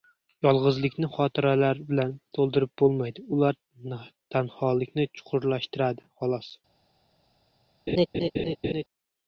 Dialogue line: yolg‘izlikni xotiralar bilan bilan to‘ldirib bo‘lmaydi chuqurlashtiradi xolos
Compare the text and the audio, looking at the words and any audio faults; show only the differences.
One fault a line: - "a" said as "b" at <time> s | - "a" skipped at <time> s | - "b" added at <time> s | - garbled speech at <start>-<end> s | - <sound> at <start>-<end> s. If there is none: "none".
- "bilan" skipped at 2.1 s
- "ular tanholikni" added at 3.4 s
- laugh at 7.9-8.8 s